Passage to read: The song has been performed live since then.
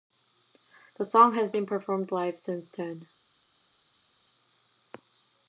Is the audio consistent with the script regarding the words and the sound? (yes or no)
yes